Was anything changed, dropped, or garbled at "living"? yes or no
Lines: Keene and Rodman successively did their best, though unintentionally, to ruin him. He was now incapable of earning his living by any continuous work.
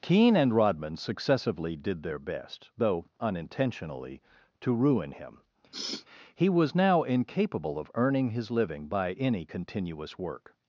no